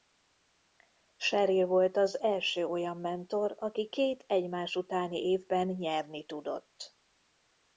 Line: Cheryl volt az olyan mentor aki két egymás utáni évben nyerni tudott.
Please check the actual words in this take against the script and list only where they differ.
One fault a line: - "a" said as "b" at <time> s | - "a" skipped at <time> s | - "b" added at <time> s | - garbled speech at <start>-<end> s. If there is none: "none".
- "első" added at 2.2 s